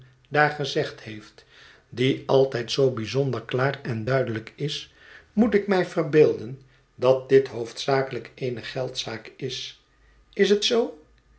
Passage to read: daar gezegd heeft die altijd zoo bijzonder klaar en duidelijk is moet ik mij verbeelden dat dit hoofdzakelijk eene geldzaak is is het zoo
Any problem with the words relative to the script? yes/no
no